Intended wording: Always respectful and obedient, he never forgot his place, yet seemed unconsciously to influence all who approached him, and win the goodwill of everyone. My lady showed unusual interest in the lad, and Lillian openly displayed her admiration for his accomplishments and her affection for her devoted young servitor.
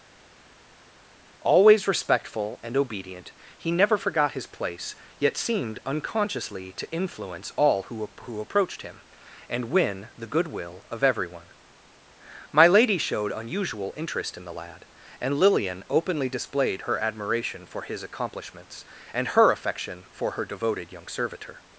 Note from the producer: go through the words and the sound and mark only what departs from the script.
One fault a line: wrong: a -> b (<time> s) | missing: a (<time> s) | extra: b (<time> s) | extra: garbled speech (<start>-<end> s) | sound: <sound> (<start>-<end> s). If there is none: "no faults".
extra: who (8.2 s)